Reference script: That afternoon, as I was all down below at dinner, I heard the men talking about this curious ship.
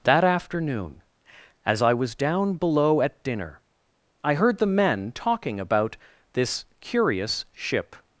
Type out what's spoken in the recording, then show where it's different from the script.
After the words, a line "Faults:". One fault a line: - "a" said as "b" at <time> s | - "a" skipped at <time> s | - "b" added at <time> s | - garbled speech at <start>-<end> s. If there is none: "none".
That afternoon, as I was down below at dinner, I heard the men talking about this curious ship.
Faults:
- "all" skipped at 2.1 s